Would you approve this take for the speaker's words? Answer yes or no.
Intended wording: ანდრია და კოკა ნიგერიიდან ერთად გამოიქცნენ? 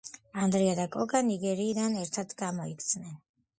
yes